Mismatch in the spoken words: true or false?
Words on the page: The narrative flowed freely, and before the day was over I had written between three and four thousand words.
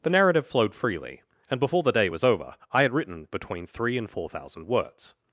false